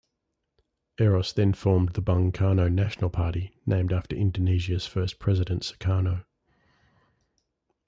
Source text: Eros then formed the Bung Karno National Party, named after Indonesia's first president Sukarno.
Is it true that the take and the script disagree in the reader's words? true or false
false